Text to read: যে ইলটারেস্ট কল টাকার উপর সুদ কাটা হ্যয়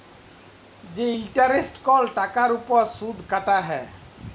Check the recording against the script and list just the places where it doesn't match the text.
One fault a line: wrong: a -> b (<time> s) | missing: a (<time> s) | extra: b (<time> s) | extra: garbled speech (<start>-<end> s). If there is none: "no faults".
no faults